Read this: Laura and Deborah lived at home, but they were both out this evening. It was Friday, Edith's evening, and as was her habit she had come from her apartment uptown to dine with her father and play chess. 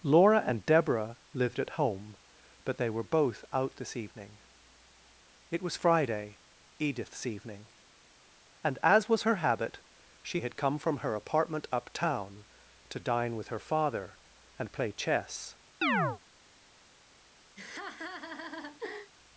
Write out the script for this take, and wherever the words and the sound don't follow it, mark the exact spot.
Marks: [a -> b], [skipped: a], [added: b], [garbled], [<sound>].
Laura and Deborah lived at home, but they were both out this evening. It was Friday, Edith's evening, and as was her habit she had come from her apartment uptown to dine with her father and play chess. [chirp] [laugh]